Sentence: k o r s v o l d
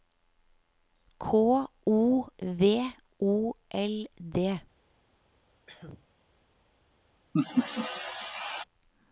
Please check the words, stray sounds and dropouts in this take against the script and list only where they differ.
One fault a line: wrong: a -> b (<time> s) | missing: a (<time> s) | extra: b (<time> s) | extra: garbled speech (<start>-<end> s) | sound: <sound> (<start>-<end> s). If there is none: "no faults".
missing: r s (2.3 s)
sound: cough (5.7-6.1 s)
sound: laugh (7.3-8.6 s)